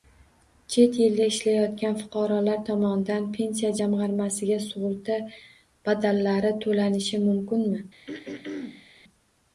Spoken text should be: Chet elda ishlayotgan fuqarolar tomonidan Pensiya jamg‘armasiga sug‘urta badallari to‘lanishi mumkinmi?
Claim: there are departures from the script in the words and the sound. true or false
true